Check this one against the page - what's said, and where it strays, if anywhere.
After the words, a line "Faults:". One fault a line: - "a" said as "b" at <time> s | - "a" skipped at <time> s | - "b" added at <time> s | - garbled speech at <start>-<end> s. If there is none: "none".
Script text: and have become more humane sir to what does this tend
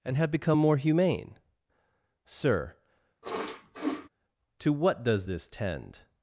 and have become more humane sir to what does this tend
Faults:
none